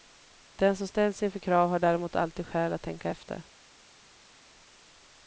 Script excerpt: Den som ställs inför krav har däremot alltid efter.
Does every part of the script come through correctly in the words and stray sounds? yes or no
no